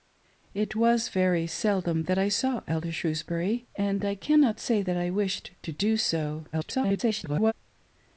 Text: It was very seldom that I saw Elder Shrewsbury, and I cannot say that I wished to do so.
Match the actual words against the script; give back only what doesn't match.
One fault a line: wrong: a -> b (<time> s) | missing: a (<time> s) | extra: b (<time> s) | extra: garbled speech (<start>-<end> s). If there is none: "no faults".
extra: garbled speech (6.5-7.5 s)